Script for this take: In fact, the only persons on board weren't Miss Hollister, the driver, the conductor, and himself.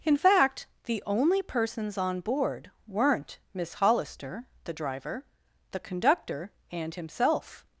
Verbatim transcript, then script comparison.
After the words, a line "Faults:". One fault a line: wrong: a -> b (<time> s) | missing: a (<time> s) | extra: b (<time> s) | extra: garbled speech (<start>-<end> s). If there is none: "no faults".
In fact, the only persons on board weren't Miss Hollister, the driver, the conductor, and himself.
Faults:
no faults